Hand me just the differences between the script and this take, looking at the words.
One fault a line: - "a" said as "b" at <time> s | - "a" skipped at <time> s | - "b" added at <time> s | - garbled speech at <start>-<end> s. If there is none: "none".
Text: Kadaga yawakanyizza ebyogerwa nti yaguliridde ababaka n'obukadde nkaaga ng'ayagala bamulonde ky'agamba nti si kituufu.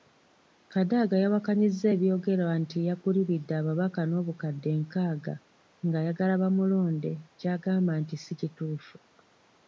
none